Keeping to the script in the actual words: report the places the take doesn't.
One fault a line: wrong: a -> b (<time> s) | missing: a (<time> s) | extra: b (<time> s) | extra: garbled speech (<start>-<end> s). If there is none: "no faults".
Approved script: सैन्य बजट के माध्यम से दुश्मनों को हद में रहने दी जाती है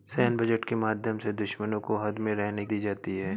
no faults